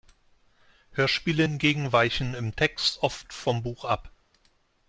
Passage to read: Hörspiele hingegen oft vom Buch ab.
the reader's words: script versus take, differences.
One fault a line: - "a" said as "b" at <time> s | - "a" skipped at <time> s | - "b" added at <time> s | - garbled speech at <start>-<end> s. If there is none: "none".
- "weichen im Text" added at 1.9 s